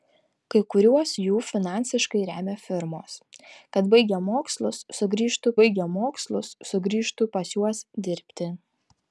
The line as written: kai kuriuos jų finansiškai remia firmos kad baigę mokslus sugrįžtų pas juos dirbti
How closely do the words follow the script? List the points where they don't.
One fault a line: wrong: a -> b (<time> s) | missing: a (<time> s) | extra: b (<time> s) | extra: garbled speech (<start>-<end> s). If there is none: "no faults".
extra: baigę mokslus sugrįžtų (5.6 s)